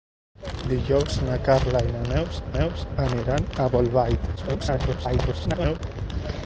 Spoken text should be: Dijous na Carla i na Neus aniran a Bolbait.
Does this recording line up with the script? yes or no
no